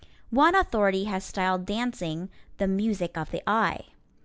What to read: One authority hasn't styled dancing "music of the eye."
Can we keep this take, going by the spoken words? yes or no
no